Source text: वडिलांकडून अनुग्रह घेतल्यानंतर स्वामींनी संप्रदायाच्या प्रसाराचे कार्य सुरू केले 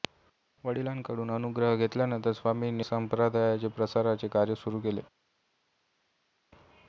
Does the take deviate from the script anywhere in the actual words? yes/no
no